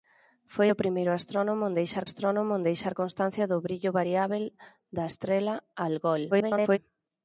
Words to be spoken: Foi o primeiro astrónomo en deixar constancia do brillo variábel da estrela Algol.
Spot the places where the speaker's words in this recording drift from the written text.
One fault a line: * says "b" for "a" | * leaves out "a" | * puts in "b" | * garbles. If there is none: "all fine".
* puts in "astrónomo en deixar"
* garbles